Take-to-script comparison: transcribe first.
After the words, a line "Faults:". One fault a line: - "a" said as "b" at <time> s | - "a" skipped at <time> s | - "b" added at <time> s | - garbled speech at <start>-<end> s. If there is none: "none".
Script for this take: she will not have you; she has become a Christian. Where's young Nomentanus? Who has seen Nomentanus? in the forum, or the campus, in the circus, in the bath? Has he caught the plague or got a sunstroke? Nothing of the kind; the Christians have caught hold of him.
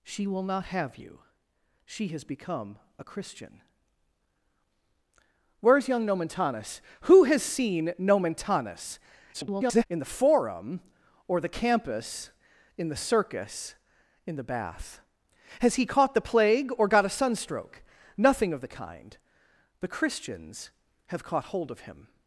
she will not have you; she has become a Christian. Where's young Nomentanus? Who has seen Nomentanus? [garbled] in the forum, or the campus, in the circus, in the bath? Has he caught the plague or got a sunstroke? Nothing of the kind; the Christians have caught hold of him.
Faults:
- garbled speech at 9.3-9.9 s